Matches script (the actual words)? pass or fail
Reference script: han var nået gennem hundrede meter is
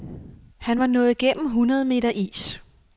pass